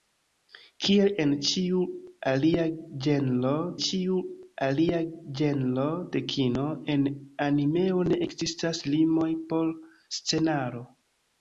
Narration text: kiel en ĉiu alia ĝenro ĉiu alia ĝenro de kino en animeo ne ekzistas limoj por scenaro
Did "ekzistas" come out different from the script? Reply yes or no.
no